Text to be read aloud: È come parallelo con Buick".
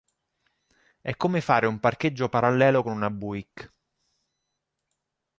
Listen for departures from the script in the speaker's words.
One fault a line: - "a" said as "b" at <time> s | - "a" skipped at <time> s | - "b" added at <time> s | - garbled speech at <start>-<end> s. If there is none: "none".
- "fare un parcheggio" added at 1.4 s
- "una" added at 2.9 s